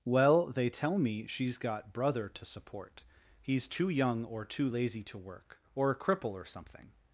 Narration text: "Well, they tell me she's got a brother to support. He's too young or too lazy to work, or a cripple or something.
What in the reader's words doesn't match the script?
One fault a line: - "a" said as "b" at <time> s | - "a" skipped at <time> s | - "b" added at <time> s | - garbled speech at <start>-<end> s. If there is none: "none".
- "a" skipped at 1.9 s